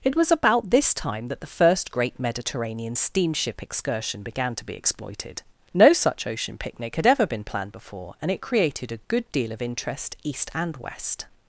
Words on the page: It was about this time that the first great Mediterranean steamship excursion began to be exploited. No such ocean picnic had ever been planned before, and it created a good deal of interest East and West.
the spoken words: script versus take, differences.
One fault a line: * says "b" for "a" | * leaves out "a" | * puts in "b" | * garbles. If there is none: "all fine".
all fine